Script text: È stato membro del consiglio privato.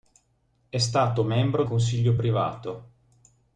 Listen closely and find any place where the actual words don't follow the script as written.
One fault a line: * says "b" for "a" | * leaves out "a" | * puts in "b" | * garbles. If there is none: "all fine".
* leaves out "del"